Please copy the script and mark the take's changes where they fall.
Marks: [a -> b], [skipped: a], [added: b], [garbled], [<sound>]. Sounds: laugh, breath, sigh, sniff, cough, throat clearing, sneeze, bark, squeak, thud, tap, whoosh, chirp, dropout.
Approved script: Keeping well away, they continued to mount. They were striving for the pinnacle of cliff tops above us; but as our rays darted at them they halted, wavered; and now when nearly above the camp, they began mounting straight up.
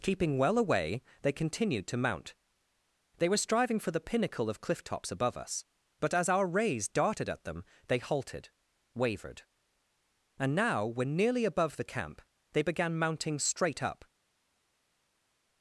Keeping well away, they continued to mount. They were striving for the pinnacle of cliff tops above us; but as our rays darted at them they halted, wavered; and now when nearly above the camp, they began mounting straight up.